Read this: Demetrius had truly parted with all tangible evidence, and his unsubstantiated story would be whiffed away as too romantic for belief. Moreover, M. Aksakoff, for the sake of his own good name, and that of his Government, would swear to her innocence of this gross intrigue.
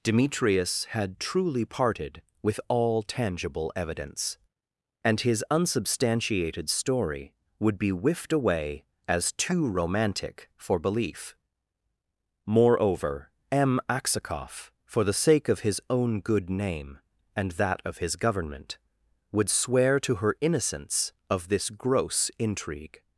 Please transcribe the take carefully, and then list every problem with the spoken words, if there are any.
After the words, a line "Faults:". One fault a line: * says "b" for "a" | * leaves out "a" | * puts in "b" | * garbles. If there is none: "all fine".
Demetrius had truly parted with all tangible evidence, and his unsubstantiated story would be whiffed away as too romantic for belief. Moreover, M. Aksakoff, for the sake of his own good name, and that of his Government, would swear to her innocence of this gross intrigue.
Faults:
all fine